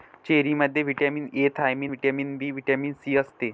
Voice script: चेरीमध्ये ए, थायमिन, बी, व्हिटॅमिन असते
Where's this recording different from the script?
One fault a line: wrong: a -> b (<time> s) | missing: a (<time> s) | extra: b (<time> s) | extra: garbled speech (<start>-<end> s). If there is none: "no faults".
extra: व्हिटॅमिन (0.8 s)
extra: व्हिटॅमिन (1.9 s)
extra: सी (3.0 s)